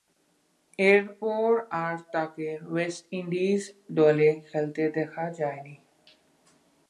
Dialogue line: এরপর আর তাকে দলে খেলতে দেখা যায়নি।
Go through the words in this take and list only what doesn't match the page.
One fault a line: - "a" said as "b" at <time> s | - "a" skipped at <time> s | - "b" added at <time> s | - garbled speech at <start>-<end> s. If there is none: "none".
- "ওয়েস্ট ইন্ডিজ" added at 2.6 s